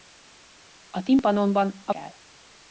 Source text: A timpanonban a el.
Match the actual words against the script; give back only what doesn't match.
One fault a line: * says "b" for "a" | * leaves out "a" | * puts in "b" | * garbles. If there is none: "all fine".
all fine